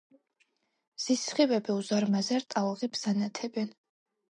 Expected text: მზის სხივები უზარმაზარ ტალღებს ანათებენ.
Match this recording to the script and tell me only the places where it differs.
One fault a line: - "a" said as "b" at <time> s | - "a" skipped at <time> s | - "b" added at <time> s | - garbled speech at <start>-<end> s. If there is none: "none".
none